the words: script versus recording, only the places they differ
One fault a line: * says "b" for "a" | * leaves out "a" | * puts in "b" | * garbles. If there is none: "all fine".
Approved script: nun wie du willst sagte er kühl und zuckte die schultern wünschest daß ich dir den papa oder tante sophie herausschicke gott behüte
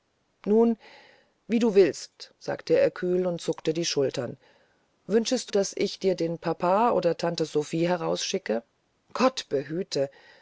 all fine